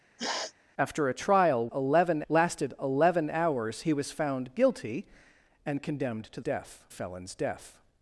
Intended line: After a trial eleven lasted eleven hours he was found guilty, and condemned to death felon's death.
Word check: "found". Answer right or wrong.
right